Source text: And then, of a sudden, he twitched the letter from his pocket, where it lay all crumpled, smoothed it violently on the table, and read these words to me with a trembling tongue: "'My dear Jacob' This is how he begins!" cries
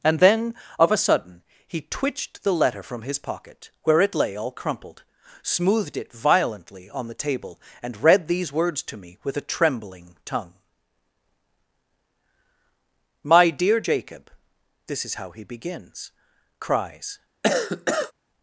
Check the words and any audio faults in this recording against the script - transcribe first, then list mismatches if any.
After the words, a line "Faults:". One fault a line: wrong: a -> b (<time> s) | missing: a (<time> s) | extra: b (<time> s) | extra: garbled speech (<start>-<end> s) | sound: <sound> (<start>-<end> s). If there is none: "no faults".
And then, of a sudden, he twitched the letter from his pocket, where it lay all crumpled, smoothed it violently on the table, and read these words to me with a trembling tongue: "'My dear Jacob' This is how he begins!" cries
Faults:
sound: cough (17.4-18.1 s)